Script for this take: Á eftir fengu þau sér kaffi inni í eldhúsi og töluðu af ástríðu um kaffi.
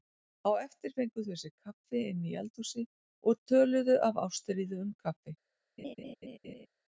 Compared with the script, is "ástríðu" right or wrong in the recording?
right